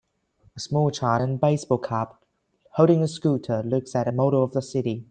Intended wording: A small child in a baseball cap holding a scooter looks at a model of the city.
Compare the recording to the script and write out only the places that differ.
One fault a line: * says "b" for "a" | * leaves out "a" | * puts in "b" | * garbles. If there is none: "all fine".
all fine